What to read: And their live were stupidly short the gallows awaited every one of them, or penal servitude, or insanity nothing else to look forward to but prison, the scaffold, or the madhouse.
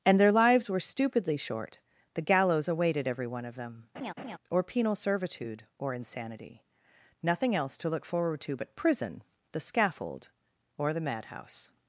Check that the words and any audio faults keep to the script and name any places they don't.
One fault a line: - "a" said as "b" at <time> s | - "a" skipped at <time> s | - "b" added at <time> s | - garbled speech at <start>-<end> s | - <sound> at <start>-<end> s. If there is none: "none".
- "live" said as "lives" at 0.3 s
- laugh at 3.9-4.4 s